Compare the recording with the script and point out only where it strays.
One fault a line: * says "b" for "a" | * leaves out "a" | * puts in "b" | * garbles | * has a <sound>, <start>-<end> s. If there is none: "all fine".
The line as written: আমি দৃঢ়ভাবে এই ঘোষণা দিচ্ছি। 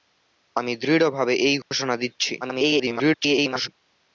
* has a dropout, 1.6-1.7 s
* garbles